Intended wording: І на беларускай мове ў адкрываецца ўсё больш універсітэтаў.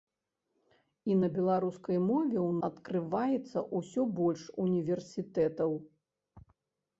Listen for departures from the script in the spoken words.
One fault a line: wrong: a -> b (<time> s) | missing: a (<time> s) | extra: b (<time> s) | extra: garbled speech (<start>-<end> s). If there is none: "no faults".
no faults